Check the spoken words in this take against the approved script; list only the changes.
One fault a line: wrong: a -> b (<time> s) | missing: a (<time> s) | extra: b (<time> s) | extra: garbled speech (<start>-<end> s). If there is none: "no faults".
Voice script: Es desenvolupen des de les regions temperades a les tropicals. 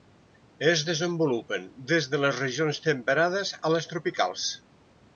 no faults